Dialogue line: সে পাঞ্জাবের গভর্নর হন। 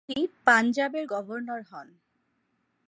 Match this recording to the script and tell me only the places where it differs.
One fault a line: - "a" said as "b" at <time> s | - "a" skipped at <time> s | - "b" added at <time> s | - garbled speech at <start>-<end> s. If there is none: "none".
- "সে" said as "তিনি" at 0.1 s